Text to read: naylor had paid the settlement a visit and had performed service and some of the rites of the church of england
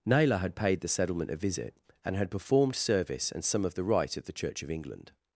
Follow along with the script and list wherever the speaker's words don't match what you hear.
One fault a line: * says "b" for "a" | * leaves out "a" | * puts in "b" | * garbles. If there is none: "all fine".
* says "rite" for "rites"